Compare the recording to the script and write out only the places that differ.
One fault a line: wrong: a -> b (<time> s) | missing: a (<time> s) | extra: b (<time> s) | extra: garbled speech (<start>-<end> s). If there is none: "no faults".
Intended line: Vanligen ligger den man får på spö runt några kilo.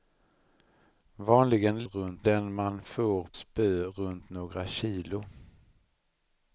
wrong: ligger -> runt (1.8 s)
missing: på (3.3 s)